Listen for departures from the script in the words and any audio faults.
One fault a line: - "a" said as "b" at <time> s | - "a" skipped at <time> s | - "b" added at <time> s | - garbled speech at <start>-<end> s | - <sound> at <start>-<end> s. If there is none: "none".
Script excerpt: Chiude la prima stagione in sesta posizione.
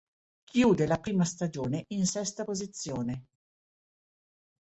none